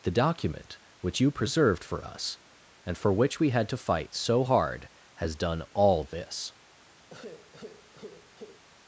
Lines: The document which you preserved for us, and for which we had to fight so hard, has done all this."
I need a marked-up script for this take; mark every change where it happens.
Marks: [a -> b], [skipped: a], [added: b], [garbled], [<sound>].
The document which you preserved for us, and for which we had to fight so hard, has done all this." [sigh]